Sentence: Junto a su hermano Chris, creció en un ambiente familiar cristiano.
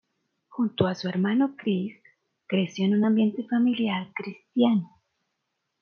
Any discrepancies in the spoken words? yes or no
no